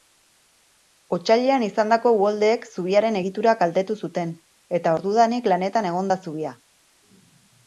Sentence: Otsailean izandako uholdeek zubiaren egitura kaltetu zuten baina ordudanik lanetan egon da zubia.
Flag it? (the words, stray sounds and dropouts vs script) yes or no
yes